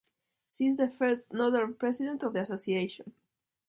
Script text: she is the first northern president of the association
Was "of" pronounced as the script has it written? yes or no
yes